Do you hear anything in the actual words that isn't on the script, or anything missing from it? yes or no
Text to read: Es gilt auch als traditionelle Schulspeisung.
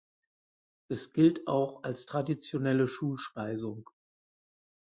no